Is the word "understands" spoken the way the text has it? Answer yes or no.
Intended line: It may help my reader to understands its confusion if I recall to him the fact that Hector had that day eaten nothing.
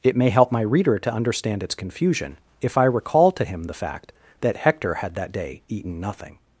no